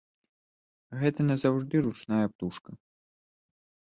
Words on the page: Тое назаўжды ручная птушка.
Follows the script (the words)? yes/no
no